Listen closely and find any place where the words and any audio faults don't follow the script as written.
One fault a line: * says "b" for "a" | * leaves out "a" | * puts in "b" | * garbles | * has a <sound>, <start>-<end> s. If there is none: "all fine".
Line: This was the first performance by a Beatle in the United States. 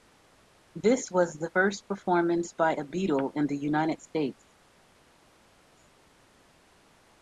all fine